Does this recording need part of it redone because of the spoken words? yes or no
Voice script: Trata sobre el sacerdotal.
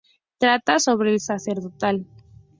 no